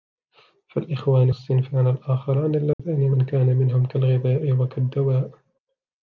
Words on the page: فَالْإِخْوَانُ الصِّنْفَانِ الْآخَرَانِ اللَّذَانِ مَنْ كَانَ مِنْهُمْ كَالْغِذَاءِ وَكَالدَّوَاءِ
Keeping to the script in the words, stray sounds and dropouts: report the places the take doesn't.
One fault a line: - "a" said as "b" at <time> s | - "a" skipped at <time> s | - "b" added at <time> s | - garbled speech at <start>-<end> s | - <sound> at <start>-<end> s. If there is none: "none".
- dropout at 2.7-2.8 s